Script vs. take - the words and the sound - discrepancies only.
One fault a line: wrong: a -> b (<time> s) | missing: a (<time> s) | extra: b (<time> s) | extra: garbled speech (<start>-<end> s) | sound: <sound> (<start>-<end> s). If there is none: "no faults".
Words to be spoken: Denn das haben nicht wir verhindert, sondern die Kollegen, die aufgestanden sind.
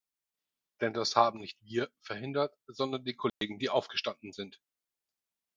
sound: dropout (3.3-3.4 s)